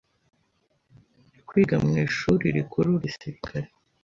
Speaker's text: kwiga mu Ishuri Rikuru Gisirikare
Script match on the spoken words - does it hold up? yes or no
yes